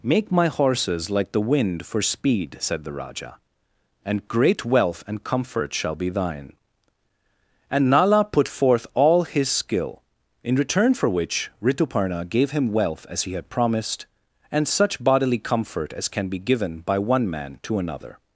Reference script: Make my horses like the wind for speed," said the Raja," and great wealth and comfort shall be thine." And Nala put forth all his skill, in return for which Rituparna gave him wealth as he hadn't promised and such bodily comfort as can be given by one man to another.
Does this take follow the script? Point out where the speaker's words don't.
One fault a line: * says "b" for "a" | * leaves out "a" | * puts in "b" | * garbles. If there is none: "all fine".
* says "had" for "hadn't"